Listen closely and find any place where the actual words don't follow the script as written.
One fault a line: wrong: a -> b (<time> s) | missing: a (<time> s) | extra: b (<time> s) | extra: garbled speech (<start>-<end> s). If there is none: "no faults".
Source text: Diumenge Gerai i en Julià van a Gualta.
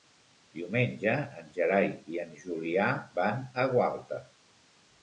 extra: en (1.4 s)